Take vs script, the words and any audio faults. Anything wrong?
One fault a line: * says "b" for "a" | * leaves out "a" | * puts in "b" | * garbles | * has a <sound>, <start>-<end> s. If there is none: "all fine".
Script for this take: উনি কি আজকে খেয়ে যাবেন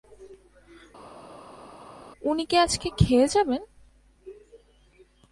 all fine